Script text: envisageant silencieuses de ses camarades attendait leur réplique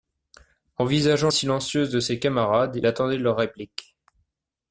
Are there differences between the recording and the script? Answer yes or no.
no